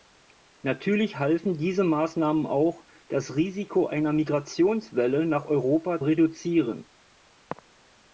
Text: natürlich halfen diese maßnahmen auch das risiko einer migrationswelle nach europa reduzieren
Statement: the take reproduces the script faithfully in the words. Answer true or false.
true